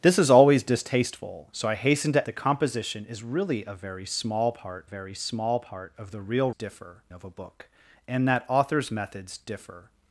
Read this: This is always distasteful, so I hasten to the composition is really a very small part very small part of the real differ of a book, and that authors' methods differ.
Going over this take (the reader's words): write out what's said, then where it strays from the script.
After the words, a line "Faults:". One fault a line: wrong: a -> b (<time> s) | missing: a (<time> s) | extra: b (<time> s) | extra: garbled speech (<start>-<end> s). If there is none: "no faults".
This is always distasteful, so I hasten to the composition is really a very small part very small part of the real differ of a book, and that authors' methods differ.
Faults:
no faults